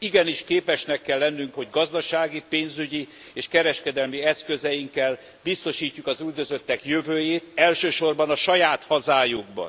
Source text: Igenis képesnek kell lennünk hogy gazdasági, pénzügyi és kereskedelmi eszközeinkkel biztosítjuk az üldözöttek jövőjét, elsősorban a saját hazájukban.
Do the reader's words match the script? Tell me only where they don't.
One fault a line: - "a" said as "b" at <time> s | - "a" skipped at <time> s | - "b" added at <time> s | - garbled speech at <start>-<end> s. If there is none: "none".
none